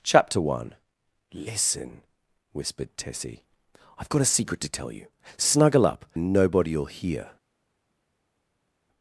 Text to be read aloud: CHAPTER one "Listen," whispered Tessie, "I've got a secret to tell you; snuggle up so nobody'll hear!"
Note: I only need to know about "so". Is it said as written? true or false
false